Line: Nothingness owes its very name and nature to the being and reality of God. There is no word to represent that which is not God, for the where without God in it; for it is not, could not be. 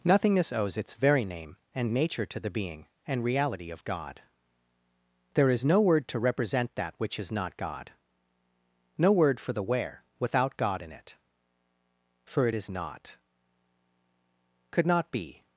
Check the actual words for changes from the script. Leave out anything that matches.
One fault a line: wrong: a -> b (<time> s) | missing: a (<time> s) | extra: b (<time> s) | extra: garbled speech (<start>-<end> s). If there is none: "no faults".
extra: no word (9.0 s)